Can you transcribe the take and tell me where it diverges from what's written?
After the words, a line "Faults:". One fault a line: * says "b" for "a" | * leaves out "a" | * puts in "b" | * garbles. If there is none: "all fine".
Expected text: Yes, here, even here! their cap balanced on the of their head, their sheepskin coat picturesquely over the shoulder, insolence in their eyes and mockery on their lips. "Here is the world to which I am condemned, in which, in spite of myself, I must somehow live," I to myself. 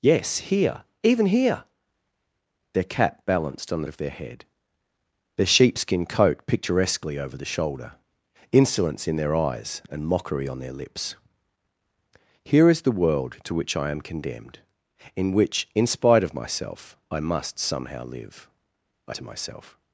Yes, here, even here! their cap balanced on the of their head, their sheepskin coat picturesquely over the shoulder, insolence in their eyes and mockery on their lips. "Here is the world to which I am condemned, in which, in spite of myself, I must somehow live," I to myself.
Faults:
all fine